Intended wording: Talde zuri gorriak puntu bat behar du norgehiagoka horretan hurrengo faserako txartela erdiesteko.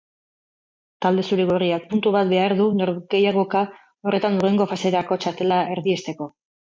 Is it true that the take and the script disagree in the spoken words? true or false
false